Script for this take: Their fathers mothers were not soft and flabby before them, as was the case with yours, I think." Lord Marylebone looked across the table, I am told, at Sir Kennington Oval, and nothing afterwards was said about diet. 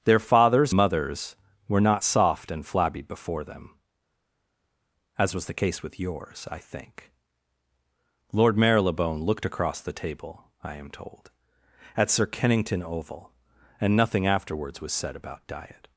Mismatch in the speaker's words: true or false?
false